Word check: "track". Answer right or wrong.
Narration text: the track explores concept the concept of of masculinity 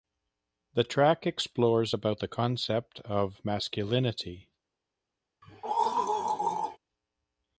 right